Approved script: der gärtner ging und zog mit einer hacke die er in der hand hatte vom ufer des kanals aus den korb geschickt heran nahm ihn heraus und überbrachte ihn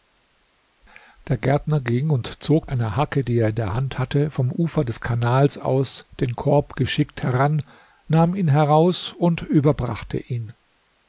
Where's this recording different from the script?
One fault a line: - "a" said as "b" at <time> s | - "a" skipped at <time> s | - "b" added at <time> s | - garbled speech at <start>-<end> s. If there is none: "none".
- "mit" skipped at 2.7 s